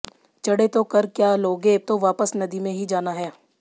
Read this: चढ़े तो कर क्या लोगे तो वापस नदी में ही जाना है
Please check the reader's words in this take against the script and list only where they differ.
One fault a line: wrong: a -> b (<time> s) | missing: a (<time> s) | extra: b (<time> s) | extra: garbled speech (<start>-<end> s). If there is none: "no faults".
no faults